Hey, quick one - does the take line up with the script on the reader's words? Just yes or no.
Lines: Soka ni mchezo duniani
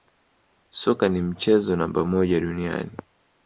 no